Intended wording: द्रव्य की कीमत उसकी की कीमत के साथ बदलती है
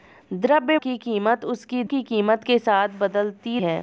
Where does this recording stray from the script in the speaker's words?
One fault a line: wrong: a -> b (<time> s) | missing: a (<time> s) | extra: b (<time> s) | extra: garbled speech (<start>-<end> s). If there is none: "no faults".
no faults